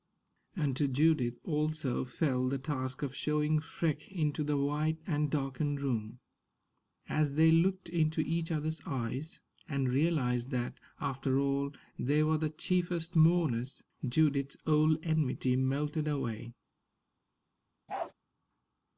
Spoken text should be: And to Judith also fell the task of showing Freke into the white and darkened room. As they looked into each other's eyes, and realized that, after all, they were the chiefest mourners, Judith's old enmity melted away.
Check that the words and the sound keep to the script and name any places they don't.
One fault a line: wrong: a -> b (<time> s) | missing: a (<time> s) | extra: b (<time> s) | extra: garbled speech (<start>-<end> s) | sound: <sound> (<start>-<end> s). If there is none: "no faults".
sound: bark (17.9-18.1 s)